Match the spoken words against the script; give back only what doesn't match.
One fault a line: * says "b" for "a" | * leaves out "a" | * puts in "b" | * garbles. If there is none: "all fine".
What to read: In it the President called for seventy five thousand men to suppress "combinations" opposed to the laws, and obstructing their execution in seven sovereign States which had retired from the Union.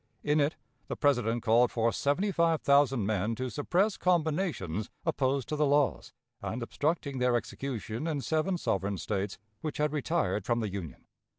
all fine